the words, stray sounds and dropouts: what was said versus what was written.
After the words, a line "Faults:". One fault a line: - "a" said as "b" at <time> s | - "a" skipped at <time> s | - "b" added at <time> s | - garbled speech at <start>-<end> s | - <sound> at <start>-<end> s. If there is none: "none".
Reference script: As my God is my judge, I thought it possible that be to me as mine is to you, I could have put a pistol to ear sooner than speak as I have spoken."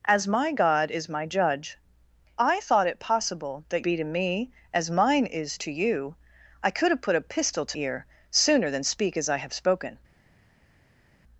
As my God is my judge, I thought it possible that be to me as mine is to you, I could have put a pistol to ear sooner than speak as I have spoken."
Faults:
none